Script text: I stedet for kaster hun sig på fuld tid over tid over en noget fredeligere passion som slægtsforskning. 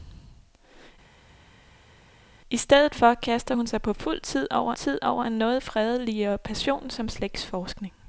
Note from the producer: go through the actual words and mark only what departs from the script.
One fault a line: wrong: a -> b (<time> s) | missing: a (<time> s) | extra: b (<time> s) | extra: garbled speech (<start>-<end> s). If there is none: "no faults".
no faults